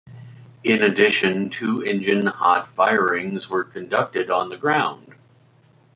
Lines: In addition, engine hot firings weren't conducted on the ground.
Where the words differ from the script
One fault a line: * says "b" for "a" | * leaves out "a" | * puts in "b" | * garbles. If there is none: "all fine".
* puts in "two"
* says "were" for "weren't"